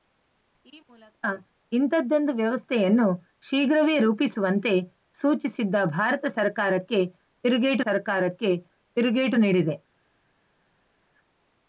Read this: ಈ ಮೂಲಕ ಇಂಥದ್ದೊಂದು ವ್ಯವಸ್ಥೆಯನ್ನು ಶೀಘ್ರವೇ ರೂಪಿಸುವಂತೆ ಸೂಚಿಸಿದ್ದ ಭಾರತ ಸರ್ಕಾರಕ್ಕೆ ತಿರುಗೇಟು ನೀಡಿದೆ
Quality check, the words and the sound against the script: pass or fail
fail